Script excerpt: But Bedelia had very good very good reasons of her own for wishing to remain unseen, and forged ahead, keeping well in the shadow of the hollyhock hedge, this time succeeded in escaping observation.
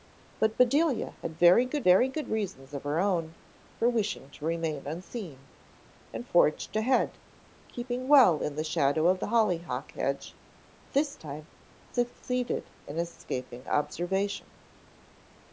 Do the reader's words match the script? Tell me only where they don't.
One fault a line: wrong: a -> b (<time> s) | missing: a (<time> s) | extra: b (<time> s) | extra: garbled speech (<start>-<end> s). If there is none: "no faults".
no faults